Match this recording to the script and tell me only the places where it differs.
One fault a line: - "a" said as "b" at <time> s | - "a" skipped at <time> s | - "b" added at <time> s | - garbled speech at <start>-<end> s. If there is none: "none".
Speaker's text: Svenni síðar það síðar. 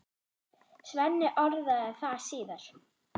- "síðar" said as "orðaði" at 1.4 s